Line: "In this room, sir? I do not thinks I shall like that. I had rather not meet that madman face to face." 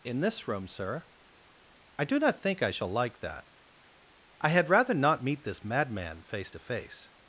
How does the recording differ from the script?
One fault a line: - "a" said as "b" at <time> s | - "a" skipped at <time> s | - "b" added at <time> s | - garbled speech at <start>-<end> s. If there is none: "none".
- "thinks" said as "think" at 2.4 s
- "that" said as "this" at 5.4 s